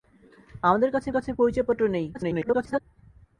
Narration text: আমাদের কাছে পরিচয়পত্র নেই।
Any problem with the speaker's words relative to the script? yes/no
yes